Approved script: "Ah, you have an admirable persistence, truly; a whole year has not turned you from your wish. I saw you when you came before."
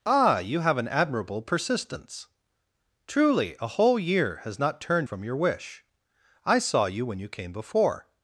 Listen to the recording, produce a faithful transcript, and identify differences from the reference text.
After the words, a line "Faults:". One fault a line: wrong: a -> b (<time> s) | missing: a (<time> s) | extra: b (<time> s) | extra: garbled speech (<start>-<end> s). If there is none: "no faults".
"Ah, you have an admirable persistence, truly; a whole year has not turned from your wish. I saw you when you came before."
Faults:
missing: you (5.1 s)